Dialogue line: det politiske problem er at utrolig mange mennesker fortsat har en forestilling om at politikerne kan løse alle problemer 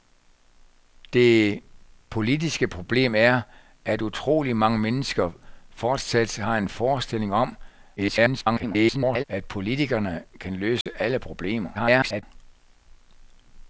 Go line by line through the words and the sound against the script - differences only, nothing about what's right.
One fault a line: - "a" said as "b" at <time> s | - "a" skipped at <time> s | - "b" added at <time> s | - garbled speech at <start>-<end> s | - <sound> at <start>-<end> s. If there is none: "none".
- garbled speech at 8.0-9.2 s
- dropout at 10.8-10.9 s
- garbled speech at 11.7-12.2 s